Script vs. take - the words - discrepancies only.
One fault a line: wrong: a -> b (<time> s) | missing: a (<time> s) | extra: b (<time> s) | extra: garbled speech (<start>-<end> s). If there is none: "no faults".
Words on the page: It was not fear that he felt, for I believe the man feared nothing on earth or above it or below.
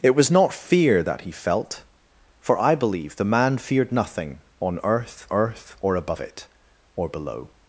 extra: earth (5.3 s)